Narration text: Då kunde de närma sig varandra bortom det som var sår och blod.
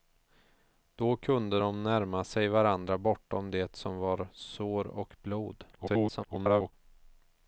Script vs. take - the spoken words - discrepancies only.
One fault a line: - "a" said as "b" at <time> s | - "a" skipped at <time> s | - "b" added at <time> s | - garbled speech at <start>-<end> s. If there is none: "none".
- garbled speech at 5.7-6.7 s